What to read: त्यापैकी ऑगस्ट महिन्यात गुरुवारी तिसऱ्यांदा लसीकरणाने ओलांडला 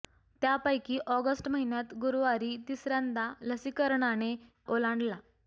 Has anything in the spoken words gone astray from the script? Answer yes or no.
no